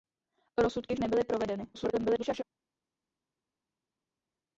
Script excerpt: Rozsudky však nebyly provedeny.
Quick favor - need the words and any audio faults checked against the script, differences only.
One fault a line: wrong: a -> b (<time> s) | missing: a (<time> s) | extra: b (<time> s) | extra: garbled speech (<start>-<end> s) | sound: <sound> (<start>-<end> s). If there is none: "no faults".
missing: však (0.9 s)
extra: garbled speech (1.7-2.4 s)